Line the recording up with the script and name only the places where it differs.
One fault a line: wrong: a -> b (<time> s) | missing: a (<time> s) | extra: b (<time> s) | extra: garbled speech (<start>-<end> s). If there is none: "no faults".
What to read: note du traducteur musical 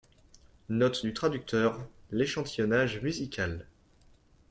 extra: l'échantillonnage (2.1 s)